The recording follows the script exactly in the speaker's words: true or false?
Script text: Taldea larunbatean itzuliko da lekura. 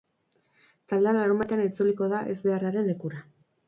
false